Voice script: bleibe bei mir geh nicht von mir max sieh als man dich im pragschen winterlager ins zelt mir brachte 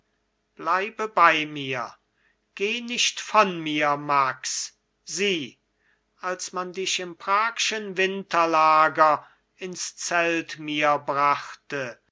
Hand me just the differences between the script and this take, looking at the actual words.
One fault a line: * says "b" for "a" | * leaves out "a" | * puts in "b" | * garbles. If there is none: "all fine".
all fine